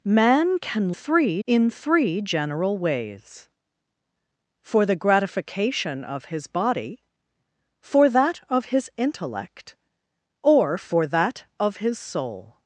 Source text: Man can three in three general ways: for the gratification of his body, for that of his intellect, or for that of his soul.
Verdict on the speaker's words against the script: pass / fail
pass